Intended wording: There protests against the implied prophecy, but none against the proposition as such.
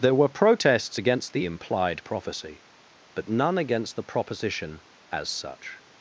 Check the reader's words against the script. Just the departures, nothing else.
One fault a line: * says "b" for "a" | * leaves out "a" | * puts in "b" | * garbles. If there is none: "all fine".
* puts in "were"